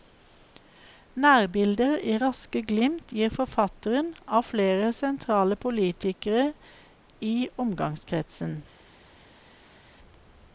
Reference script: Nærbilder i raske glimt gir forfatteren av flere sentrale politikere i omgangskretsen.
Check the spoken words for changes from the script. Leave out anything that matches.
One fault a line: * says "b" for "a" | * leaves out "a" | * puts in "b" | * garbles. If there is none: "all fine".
all fine